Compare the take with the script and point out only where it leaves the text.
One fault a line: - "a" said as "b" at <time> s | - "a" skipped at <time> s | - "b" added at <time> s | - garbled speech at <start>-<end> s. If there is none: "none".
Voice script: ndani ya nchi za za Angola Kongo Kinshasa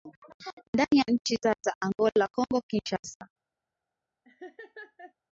none